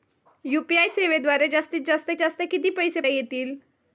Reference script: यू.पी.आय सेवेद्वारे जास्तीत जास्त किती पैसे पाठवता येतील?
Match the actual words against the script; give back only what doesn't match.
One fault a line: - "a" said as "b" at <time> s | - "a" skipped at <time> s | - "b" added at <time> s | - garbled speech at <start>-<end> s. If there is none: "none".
- "जास्त" added at 2.2 s
- "पाठवता" skipped at 3.0 s